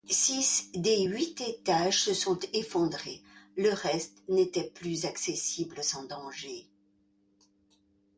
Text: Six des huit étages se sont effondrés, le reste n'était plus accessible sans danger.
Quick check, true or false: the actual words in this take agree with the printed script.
true